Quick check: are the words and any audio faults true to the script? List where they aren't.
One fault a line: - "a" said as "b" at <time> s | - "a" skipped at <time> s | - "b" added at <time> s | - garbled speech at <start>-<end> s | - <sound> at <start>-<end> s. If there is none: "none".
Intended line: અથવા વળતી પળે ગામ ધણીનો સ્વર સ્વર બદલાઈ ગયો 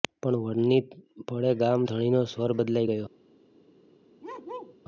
- "અથવા" said as "પણ" at 0.2 s
- "સ્વર" skipped at 2.5 s
- bark at 4.2-4.8 s